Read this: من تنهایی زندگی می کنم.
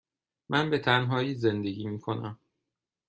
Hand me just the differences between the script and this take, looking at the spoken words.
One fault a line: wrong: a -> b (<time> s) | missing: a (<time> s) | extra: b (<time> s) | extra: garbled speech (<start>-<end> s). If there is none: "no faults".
extra: به (0.7 s)